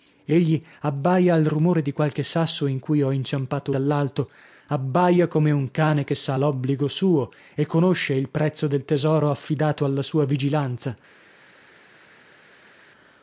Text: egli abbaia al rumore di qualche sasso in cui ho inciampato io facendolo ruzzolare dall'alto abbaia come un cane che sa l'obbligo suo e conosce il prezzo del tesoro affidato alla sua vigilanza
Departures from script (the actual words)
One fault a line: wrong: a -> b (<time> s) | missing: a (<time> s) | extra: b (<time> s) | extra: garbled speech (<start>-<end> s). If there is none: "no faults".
missing: io facendolo ruzzolare (3.8 s)